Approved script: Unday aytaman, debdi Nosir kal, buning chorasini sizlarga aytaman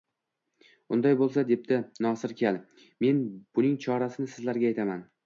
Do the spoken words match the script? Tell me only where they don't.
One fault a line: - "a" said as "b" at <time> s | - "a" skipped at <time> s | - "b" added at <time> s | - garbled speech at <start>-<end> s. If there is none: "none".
- "aytaman" said as "bo‘lsa" at 1.2 s
- "men" added at 3.1 s